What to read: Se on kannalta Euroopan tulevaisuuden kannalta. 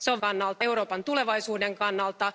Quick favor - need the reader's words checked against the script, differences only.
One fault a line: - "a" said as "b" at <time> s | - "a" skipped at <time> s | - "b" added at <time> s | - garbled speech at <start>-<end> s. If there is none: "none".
none